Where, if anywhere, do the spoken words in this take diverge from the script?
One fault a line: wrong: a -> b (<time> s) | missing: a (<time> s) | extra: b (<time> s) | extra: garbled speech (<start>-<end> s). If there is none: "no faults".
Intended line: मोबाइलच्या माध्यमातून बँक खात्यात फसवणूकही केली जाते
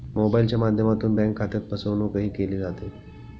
no faults